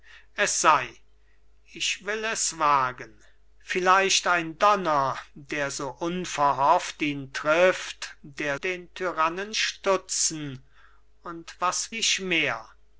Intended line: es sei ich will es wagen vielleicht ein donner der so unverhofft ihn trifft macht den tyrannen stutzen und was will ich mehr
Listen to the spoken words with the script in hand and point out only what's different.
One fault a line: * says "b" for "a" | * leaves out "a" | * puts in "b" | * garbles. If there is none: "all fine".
* says "der" for "macht"
* leaves out "will"